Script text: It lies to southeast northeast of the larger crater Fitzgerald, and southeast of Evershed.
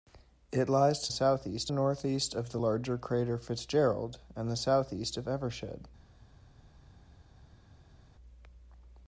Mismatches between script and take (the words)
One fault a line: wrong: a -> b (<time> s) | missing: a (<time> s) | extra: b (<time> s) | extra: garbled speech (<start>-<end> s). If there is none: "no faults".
no faults